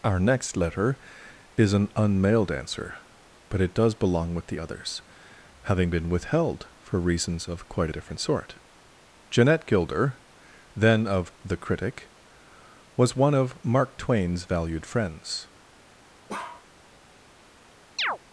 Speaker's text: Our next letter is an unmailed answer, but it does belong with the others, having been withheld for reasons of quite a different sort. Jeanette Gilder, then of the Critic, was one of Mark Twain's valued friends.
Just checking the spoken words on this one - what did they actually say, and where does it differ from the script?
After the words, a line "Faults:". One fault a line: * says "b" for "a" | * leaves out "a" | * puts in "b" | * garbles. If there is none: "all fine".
Our next letter is an unmailed answer, but it does belong with the others, having been withheld for reasons of quite a different sort. Jeanette Gilder, then of the Critic, was one of Mark Twain's valued friends.
Faults:
all fine